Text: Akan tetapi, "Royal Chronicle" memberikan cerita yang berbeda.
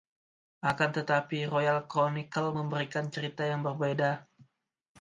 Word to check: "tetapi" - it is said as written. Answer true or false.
true